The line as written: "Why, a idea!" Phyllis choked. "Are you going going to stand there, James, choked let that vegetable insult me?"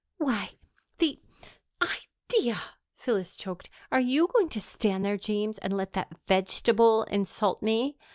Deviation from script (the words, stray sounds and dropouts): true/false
true